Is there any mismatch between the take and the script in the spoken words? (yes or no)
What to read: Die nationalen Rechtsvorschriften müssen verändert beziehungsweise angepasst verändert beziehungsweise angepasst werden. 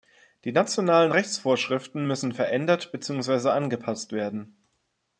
yes